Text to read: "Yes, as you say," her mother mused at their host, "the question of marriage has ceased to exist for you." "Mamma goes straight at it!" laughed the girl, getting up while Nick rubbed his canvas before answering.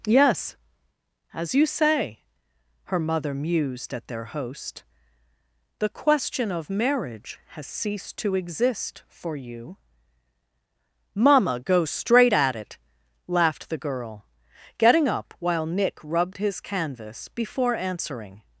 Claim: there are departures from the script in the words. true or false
true